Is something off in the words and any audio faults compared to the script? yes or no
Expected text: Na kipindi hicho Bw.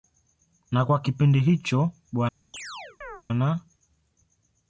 yes